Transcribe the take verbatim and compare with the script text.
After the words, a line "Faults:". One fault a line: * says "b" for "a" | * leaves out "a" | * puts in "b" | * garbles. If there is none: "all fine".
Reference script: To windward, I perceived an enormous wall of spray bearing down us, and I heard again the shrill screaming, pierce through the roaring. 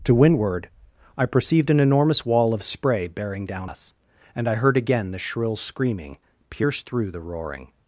To windward, I perceived an enormous wall of spray bearing down us, and I heard again the shrill screaming, pierce through the roaring.
Faults:
all fine